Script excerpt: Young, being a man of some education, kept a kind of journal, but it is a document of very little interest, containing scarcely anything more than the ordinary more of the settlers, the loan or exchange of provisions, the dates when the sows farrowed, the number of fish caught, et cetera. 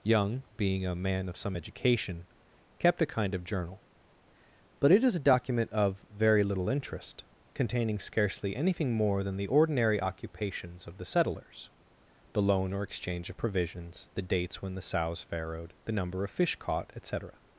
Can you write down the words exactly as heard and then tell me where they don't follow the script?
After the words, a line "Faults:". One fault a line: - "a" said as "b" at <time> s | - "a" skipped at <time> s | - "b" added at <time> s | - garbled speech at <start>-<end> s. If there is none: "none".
Young, being a man of some education, kept a kind of journal, but it is a document of very little interest, containing scarcely anything more than the ordinary occupations of the settlers, the loan or exchange of provisions, the dates when the sows farrowed, the number of fish caught, et cetera.
Faults:
- "more" said as "occupations" at 10.0 s